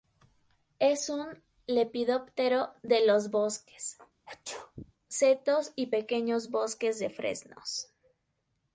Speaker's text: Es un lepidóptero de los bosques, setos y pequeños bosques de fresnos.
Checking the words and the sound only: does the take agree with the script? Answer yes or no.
no